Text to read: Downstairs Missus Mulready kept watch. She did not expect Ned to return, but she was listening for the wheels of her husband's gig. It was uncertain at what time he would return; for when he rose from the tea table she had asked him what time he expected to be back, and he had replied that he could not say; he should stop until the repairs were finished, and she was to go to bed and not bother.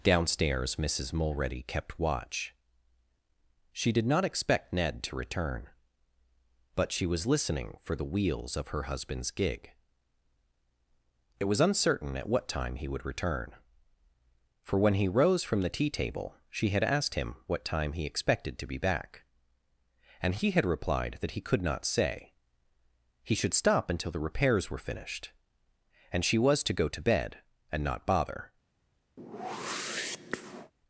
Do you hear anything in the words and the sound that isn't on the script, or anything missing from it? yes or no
yes